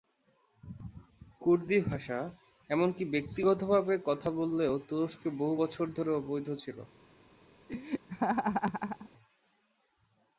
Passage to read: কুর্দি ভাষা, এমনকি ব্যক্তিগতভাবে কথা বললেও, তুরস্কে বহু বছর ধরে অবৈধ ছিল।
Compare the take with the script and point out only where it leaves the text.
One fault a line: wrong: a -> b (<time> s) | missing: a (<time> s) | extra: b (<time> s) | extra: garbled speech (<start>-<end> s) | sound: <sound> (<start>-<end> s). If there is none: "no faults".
sound: laugh (7.7-9.1 s)